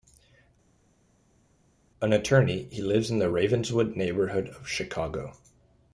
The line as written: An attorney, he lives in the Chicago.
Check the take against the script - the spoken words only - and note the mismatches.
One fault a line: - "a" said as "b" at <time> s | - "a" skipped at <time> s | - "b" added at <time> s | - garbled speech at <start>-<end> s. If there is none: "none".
- "Ravenswood neighborhood of" added at 3.3 s